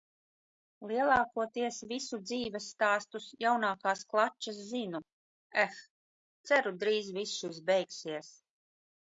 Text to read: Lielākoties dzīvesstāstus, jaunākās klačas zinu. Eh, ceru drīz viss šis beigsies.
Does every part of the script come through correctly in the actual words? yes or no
no